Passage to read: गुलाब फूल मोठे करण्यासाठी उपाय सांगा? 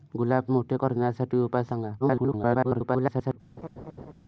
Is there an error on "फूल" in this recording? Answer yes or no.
yes